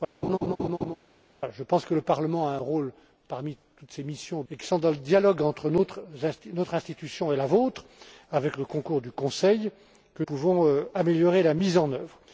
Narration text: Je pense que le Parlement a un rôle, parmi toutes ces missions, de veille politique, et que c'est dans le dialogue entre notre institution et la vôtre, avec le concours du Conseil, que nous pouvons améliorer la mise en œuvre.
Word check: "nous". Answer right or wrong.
wrong